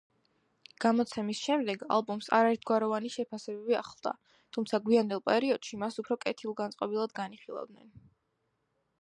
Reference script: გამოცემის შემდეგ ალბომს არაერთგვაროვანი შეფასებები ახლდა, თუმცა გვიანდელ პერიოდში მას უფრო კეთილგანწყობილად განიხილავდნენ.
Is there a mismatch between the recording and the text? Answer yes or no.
no